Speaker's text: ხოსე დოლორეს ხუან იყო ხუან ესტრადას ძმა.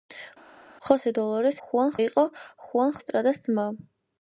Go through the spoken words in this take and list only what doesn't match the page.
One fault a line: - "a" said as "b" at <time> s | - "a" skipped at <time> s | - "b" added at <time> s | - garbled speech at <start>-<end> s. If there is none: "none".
none